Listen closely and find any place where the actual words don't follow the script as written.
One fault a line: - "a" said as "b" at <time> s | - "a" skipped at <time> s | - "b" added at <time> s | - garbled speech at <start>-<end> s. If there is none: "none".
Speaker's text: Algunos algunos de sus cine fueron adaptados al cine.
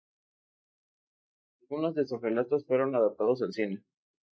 - "algunos" skipped at 1.9 s
- "cine" said as "relatos" at 2.2 s